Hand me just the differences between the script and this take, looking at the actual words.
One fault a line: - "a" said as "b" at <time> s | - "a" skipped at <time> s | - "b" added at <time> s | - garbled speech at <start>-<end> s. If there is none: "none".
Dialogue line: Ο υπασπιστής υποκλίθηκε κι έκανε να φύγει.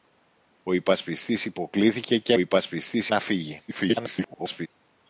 - "έκανε" said as "υπασπιστής" at 2.4 s
- garbled speech at 3.7-4.7 s